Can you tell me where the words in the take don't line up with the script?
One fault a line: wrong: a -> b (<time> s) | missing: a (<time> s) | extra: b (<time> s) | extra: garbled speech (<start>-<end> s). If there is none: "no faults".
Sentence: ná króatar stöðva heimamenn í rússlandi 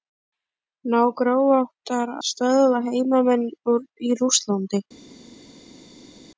no faults